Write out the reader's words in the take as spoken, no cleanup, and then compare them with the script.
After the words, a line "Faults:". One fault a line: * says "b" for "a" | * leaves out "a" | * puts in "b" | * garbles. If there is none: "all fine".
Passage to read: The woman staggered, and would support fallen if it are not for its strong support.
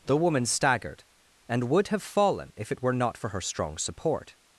The woman staggered, and would have fallen if it were not for her strong support.
Faults:
* says "have" for "support"
* says "were" for "are"
* says "her" for "its"